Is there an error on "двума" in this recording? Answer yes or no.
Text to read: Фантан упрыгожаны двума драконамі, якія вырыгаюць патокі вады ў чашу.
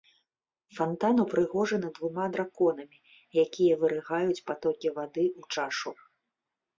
no